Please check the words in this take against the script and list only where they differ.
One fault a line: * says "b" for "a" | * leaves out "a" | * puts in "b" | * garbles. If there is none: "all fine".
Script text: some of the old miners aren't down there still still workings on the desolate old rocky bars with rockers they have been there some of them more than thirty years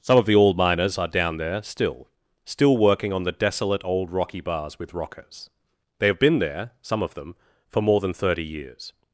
* says "are" for "aren't"
* says "working" for "workings"
* puts in "for"